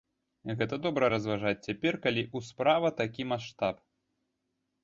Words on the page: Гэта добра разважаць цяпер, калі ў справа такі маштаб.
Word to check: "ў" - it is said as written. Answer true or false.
true